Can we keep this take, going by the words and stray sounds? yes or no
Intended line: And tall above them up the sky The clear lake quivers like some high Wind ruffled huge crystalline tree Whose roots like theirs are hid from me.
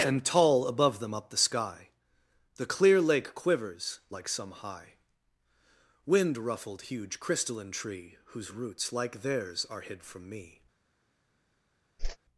no